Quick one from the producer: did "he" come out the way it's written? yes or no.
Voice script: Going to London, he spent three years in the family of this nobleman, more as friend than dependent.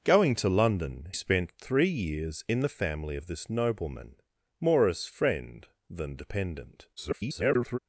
no